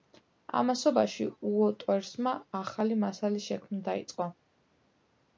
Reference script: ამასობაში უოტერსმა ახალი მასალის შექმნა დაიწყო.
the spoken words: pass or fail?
pass